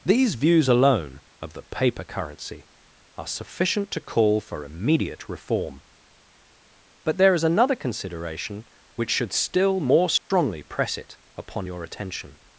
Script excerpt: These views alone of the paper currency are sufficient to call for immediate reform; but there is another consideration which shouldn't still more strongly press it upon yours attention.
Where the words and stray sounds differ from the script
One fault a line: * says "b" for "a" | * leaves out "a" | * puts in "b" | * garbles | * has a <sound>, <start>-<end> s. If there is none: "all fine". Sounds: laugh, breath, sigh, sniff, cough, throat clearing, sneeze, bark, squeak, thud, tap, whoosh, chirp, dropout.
* says "should" for "shouldn't"
* has a dropout, 10.2-10.3 s
* says "your" for "yours"